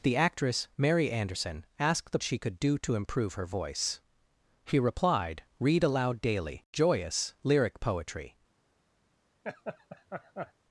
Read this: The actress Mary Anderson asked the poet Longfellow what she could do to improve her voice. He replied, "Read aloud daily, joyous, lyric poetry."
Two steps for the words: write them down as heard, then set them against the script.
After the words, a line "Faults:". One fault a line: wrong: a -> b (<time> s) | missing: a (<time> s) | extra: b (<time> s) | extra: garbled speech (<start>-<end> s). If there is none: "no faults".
The actress Mary Anderson asked the she could do to improve her voice. He replied, "Read aloud daily, joyous, lyric poetry."
Faults:
missing: poet Longfellow what (2.2 s)